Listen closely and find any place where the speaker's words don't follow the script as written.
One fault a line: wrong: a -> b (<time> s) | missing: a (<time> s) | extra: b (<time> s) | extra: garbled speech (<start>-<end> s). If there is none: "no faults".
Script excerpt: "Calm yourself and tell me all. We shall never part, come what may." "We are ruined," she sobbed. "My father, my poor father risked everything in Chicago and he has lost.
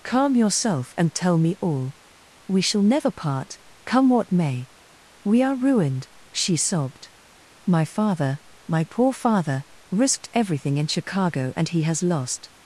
no faults